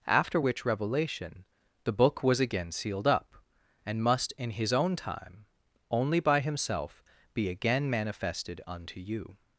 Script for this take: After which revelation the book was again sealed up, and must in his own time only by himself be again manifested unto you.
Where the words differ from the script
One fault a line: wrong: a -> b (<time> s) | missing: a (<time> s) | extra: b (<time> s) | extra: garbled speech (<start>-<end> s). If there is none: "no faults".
no faults